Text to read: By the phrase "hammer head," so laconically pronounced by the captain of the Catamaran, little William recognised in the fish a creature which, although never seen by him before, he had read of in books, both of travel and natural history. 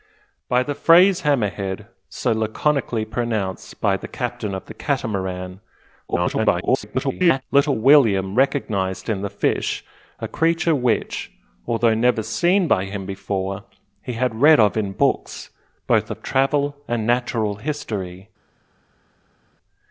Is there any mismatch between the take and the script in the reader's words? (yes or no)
yes